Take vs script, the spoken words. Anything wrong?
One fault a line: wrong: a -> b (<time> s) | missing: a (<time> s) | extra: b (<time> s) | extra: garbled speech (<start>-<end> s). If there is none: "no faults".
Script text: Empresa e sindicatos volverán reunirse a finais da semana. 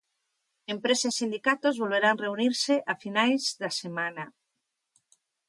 no faults